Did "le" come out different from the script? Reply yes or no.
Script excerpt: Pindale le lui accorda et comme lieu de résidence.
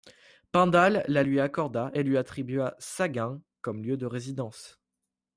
yes